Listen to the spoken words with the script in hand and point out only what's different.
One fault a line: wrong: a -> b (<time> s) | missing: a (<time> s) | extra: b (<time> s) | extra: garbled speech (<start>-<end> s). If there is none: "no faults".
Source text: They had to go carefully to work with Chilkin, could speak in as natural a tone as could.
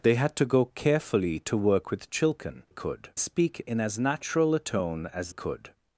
no faults